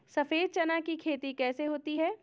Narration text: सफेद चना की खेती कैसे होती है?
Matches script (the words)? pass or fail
pass